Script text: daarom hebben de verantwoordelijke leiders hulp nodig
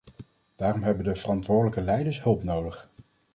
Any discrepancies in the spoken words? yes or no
no